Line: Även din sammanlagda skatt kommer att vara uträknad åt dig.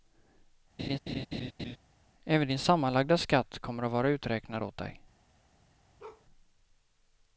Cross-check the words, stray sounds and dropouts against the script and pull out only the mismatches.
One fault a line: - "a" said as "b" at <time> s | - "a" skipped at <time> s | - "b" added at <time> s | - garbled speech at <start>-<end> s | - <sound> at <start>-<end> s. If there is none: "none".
- laugh at 0.8-1.8 s
- bark at 6.0-6.3 s